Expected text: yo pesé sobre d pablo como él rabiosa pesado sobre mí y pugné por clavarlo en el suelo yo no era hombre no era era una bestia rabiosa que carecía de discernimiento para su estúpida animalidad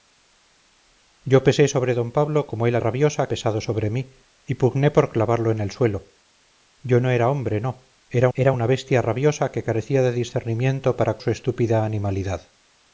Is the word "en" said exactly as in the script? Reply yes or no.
yes